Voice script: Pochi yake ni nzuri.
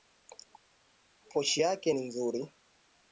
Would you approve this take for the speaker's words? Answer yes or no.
yes